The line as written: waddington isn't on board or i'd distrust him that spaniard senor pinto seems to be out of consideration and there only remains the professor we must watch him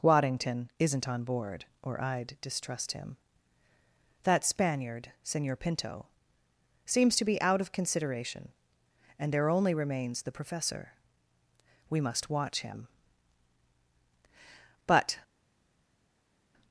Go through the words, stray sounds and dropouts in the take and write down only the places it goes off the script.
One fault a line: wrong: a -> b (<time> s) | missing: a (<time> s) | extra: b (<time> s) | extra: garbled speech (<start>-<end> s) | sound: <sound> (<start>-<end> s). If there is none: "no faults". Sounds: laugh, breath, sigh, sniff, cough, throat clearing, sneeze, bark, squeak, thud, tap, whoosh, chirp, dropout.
extra: but (14.8 s)